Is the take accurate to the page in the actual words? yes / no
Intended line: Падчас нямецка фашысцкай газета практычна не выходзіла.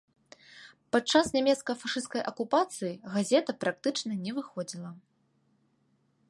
no